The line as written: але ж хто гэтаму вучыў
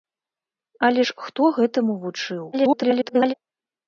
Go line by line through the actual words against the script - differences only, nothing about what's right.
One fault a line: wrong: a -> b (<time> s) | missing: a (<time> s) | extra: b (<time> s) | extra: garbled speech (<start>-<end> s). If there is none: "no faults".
extra: garbled speech (2.5-3.3 s)